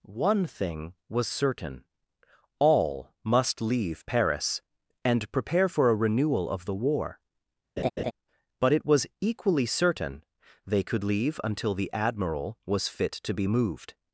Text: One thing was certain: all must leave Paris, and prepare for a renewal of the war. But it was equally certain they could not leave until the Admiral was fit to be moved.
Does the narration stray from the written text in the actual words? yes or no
yes